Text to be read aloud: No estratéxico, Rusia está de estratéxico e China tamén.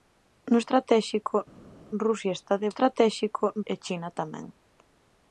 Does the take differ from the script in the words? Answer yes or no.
no